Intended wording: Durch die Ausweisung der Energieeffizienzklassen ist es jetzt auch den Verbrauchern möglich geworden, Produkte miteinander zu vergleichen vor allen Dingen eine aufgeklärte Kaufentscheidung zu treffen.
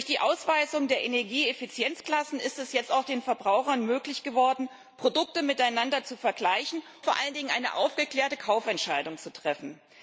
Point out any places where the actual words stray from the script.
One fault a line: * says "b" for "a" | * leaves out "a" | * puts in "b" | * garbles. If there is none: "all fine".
all fine